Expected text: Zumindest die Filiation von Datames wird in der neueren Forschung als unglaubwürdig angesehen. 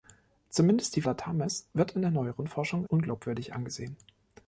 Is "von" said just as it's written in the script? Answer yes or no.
no